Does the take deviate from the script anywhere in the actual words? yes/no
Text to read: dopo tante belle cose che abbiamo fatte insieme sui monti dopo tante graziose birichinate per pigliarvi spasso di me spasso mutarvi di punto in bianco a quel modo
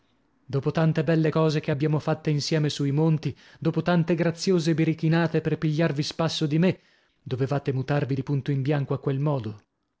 yes